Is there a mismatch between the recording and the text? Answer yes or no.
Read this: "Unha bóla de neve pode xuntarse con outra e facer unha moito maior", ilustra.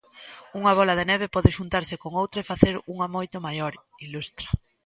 no